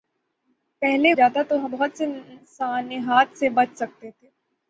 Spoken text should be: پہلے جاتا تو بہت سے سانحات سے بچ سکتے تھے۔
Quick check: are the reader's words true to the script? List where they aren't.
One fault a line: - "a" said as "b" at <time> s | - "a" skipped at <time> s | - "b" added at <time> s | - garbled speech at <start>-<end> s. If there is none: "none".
none